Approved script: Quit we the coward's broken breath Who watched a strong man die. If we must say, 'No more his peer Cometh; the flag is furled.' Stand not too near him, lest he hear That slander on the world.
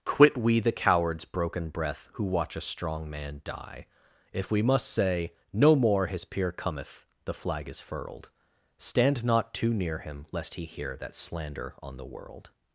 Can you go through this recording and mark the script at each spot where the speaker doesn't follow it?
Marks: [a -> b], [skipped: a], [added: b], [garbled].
Quit we the coward's broken breath Who [watched -> watch] a strong man die. If we must say, 'No more his peer Cometh; the flag is furled.' Stand not too near him, lest he hear That slander on the world.